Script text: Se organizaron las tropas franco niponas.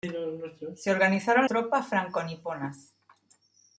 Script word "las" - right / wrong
wrong